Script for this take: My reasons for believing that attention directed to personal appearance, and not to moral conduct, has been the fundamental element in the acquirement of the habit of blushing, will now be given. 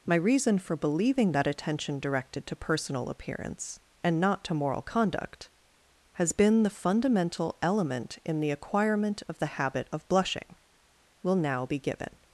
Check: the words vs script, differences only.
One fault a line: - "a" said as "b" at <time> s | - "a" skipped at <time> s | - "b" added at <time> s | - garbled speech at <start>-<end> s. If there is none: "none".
- "reasons" said as "reason" at 0.1 s